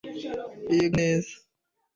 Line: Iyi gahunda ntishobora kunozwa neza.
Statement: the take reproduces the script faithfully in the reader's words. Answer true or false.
false